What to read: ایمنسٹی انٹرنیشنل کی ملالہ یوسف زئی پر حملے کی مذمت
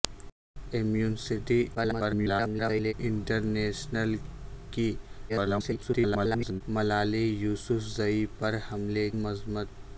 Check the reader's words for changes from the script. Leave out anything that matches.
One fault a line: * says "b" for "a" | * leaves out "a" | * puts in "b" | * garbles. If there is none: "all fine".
* garbles
* garbles
* leaves out "کی"